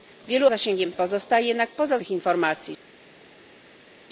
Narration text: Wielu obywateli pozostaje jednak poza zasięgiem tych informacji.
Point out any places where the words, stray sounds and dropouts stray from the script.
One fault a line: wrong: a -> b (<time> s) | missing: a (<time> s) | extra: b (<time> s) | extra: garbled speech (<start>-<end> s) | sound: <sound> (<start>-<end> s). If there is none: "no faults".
wrong: obywateli -> zasięgiem (0.5 s)
missing: zasięgiem (2.0 s)